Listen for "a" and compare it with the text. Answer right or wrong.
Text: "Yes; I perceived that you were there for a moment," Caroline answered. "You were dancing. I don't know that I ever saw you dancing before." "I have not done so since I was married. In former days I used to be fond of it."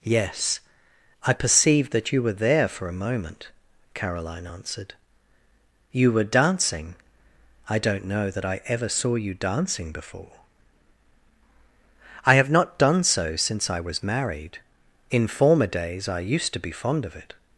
right